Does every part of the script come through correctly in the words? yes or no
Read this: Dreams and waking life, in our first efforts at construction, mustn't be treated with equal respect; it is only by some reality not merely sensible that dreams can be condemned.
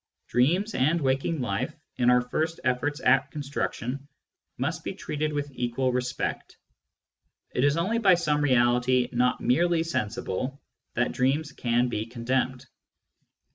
no